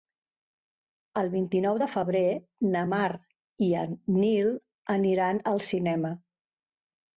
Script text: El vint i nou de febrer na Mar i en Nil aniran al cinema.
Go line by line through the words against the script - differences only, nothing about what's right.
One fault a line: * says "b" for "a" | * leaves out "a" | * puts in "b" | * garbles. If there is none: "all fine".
all fine